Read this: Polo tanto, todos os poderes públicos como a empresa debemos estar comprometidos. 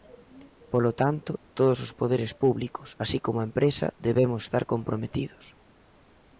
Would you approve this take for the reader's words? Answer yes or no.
no